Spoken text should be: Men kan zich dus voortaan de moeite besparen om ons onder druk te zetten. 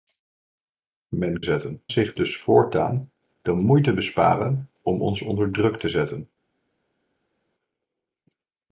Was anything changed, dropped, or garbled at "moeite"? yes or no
no